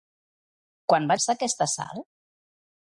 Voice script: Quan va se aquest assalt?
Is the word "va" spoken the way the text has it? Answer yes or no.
yes